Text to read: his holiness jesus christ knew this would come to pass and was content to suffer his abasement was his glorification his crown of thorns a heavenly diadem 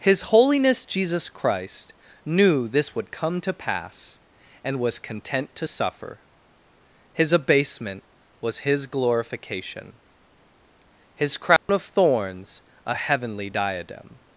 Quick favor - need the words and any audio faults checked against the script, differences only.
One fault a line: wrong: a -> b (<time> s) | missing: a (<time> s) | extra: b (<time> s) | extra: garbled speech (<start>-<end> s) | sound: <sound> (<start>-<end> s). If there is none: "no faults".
sound: dropout (11.6-11.7 s)